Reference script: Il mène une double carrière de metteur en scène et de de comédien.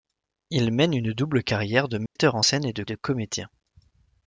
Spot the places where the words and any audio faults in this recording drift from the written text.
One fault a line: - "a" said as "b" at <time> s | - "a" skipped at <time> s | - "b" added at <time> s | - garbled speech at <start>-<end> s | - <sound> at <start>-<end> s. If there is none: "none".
- dropout at 2.1-2.2 s